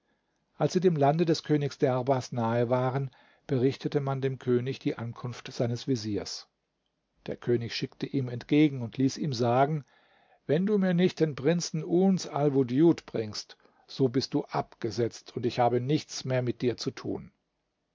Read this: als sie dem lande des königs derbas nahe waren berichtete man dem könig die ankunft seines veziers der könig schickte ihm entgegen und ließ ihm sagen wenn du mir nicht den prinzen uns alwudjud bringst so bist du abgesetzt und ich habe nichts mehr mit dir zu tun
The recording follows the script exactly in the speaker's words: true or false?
true